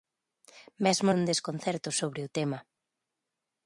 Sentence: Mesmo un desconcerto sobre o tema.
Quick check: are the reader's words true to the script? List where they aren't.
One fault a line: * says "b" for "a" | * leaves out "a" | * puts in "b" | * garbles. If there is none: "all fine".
all fine